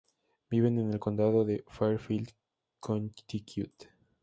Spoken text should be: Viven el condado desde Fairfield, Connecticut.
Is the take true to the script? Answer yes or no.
no